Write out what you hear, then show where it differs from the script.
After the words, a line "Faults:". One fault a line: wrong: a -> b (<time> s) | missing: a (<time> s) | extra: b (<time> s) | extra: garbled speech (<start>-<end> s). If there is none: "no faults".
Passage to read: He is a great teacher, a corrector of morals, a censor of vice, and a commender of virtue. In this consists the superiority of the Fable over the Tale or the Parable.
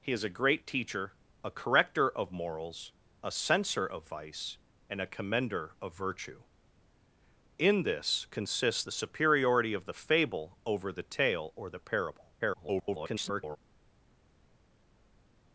He is a great teacher, a corrector of morals, a censor of vice, and a commender of virtue. In this consists the superiority of the Fable over the Tale or the Parable. [garbled]
Faults:
extra: garbled speech (12.4-13.6 s)